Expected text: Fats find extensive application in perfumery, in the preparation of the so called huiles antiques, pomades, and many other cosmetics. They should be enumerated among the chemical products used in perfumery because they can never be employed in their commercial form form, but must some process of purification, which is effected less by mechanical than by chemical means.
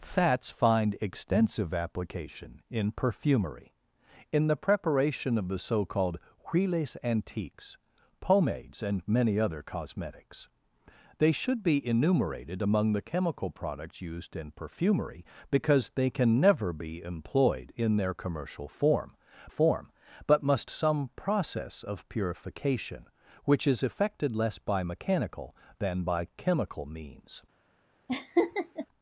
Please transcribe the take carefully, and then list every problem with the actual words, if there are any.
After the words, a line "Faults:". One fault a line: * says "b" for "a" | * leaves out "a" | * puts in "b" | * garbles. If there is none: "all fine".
Fats find extensive application in perfumery, in the preparation of the so called huiles antiques, pomades, and many other cosmetics. They should be enumerated among the chemical products used in perfumery because they can never be employed in their commercial form form, but must some process of purification, which is effected less by mechanical than by chemical means.
Faults:
all fine